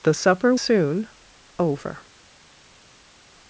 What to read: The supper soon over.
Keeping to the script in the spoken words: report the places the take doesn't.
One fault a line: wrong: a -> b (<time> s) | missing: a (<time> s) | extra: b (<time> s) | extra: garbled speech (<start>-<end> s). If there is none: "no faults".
no faults